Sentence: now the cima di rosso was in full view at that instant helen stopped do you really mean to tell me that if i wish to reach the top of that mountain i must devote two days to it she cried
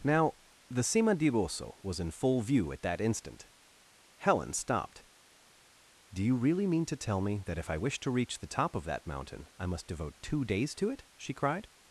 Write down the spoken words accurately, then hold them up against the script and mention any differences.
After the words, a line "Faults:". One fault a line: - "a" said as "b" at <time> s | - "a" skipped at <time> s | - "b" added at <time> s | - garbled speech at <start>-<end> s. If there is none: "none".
now the cima di rosso was in full view at that instant helen stopped do you really mean to tell me that if i wish to reach the top of that mountain i must devote two days to it she cried
Faults:
none